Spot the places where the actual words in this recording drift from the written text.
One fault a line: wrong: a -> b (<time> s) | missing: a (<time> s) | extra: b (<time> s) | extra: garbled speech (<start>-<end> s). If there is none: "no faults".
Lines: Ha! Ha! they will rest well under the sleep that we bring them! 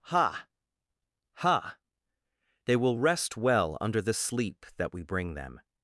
no faults